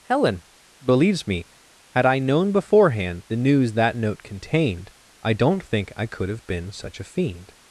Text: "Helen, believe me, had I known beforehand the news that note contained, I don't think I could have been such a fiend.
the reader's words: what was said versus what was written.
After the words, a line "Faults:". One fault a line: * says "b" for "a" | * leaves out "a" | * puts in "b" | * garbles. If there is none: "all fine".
"Helen, believes me, had I known beforehand the news that note contained, I don't think I could have been such a fiend.
Faults:
* says "believes" for "believe"